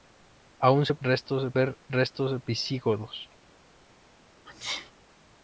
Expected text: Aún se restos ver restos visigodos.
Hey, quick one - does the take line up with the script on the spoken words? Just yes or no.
yes